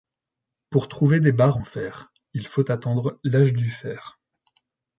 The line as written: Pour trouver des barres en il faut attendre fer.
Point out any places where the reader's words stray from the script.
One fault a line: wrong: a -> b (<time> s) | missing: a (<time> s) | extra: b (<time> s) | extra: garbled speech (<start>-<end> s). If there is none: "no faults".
extra: fer (1.6 s)
extra: l'âge du (3.2 s)